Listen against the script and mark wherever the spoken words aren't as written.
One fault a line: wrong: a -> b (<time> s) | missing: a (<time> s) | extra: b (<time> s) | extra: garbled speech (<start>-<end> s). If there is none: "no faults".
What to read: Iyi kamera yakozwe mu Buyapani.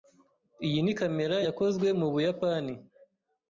extra: ni (0.8 s)